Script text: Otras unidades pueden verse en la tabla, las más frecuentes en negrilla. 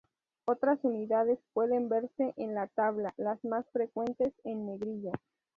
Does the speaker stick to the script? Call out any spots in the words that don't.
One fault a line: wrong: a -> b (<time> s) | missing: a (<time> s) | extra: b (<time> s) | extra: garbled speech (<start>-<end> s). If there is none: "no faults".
no faults